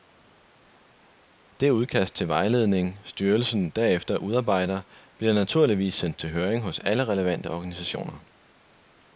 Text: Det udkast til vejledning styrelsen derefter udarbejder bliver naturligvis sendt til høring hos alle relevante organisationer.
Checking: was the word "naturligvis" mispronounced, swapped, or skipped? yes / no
no